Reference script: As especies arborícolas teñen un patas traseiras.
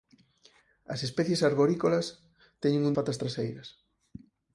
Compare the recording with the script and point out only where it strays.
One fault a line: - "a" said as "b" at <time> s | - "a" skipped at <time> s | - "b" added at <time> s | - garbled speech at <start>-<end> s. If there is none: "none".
none